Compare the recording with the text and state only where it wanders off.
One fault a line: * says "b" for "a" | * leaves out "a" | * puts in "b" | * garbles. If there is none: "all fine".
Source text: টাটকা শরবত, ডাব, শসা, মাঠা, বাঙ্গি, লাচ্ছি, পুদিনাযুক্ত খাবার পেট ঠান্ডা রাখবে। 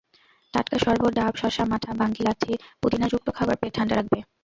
all fine